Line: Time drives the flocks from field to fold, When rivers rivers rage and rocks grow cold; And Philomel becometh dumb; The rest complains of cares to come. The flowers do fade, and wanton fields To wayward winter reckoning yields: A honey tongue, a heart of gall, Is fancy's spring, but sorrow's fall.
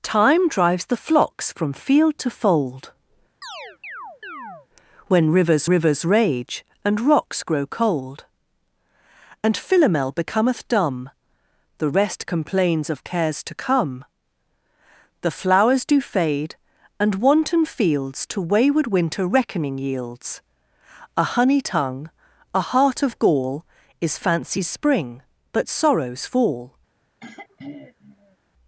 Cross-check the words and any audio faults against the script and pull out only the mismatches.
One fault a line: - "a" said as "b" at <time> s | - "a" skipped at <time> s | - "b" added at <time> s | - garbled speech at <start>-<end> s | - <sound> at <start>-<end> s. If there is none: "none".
- chirp at 3.4-4.7 s
- throat clearing at 27.2-28.4 s